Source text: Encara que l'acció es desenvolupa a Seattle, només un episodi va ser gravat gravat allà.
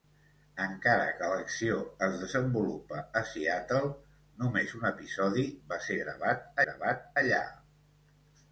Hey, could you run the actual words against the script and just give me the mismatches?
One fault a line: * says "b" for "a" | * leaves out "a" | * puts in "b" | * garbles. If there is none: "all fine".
all fine